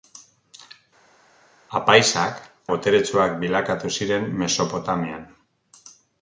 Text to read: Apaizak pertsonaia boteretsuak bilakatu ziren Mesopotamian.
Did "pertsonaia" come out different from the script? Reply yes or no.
yes